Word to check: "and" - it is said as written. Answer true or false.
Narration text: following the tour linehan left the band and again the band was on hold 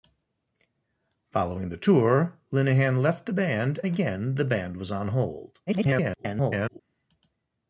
false